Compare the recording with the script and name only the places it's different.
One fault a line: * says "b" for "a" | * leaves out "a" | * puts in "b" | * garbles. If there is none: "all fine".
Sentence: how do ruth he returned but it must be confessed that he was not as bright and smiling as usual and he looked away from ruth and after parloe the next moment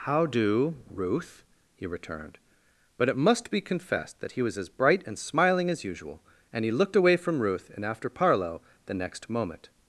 * leaves out "not"